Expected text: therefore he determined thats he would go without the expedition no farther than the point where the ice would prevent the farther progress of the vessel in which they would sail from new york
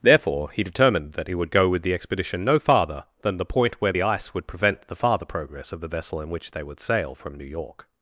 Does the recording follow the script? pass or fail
fail